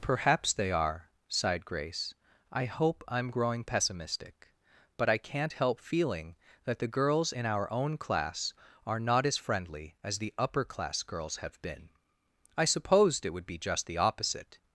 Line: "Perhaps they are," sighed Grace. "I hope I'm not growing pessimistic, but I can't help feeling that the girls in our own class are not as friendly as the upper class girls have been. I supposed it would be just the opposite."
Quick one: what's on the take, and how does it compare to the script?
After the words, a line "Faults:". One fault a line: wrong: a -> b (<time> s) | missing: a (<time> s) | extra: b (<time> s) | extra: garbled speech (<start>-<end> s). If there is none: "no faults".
"Perhaps they are," sighed Grace. "I hope I'm growing pessimistic, but I can't help feeling that the girls in our own class are not as friendly as the upper class girls have been. I supposed it would be just the opposite."
Faults:
missing: not (3.3 s)